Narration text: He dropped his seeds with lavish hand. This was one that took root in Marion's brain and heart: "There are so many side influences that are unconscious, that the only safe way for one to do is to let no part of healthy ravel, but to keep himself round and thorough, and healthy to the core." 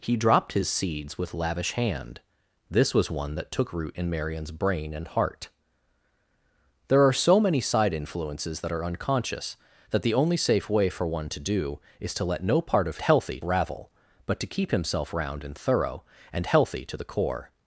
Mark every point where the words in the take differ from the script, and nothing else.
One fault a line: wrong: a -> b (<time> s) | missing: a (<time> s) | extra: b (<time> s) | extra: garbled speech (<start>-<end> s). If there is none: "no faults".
no faults